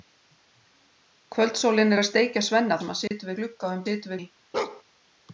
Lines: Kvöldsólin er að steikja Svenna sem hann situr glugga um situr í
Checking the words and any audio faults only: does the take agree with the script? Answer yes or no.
no